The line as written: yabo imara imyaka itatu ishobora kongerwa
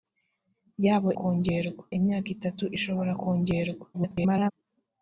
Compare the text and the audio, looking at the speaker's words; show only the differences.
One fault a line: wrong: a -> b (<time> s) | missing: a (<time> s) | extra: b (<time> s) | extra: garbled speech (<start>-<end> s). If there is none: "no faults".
wrong: imara -> kongerwa (1.2 s)
extra: garbled speech (3.9-4.5 s)